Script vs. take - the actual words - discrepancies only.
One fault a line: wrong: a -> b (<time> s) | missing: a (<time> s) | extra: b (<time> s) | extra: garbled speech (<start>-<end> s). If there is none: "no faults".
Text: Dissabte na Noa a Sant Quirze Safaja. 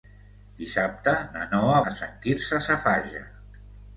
no faults